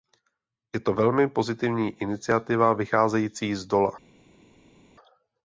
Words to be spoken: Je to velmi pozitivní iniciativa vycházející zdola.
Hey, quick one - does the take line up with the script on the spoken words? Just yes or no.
yes